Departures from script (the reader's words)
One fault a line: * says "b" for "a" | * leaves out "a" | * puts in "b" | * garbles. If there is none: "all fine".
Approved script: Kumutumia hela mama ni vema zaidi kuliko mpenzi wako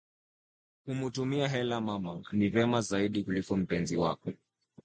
all fine